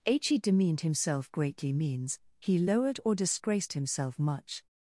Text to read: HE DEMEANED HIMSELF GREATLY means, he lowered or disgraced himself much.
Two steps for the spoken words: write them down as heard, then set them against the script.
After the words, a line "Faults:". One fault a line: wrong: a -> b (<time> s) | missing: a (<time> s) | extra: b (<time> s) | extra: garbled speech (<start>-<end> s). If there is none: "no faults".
h HE DEMEANED HIMSELF GREATLY means, he lowered or disgraced himself much.
Faults:
extra: h (0.1 s)